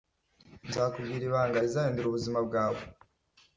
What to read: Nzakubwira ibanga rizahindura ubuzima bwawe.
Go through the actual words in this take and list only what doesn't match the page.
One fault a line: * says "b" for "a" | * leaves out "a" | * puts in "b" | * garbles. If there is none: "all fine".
all fine